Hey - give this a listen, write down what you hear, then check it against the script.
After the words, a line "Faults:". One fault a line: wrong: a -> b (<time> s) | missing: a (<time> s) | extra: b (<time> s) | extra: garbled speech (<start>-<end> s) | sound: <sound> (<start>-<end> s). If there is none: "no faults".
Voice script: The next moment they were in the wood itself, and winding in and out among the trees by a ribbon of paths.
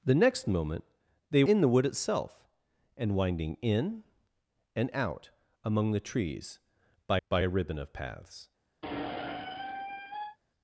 The next moment they in the wood itself, and winding in and out among the trees by by a ribbon of paths.
Faults:
missing: were (1.4 s)
extra: by (7.3 s)
sound: squeak (8.8-10.4 s)